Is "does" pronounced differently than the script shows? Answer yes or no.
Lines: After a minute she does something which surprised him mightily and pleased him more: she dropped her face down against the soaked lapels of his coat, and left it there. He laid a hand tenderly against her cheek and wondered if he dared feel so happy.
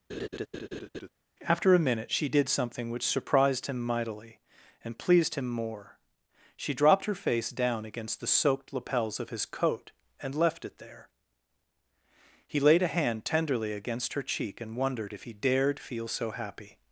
yes